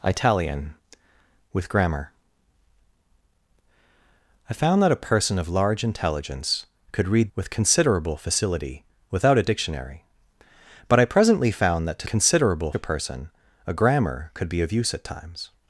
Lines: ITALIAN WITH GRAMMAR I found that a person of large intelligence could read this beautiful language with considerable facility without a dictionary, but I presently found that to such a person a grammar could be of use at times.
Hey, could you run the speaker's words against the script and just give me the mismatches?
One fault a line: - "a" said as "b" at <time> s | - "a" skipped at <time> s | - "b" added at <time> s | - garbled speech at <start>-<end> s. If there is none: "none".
- "this beautiful language" skipped at 7.3 s
- "such" said as "considerable" at 12.1 s